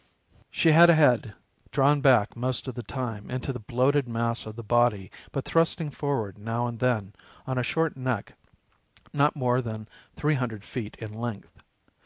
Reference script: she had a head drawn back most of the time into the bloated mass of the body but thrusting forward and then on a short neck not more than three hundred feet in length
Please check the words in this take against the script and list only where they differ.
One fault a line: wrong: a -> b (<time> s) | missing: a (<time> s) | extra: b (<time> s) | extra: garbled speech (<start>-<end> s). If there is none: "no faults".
extra: now (6.4 s)